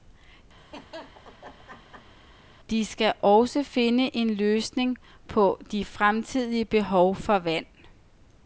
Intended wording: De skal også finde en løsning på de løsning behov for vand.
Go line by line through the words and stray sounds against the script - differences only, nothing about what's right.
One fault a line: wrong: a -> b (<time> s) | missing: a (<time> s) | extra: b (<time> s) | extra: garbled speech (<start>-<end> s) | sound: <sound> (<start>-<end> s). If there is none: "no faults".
sound: laugh (0.6-2.1 s)
wrong: løsning -> fremtidige (5.9 s)